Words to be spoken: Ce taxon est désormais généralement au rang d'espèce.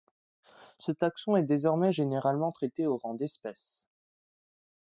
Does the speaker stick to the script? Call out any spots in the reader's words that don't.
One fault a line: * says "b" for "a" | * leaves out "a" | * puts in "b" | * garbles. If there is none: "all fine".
* puts in "traité"